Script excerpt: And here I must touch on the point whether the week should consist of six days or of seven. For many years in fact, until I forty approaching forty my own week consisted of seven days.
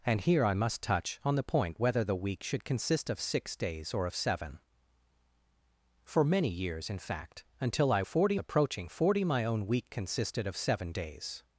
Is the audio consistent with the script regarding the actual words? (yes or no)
yes